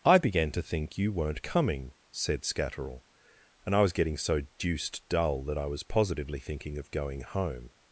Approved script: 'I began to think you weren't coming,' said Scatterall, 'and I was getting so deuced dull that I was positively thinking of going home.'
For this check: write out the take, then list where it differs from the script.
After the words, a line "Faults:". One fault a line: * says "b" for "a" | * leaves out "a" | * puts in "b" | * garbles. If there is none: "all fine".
'I began to think you weren't coming,' said Scatterall, 'and I was getting so deuced dull that I was positively thinking of going home.'
Faults:
all fine